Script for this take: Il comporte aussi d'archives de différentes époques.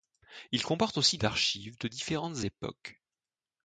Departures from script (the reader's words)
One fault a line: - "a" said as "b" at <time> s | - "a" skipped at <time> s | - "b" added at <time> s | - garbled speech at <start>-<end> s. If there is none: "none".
none